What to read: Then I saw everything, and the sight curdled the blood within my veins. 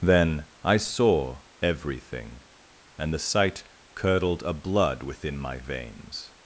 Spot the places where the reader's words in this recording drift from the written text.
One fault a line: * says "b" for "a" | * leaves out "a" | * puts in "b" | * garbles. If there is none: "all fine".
* says "a" for "the"